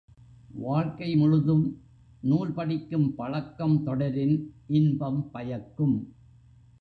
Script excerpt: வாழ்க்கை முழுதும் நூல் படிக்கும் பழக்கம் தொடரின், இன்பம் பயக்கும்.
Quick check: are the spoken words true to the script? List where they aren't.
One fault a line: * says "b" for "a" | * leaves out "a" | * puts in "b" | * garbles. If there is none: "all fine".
all fine